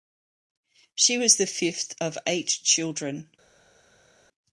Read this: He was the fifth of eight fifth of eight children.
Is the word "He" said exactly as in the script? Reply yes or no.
no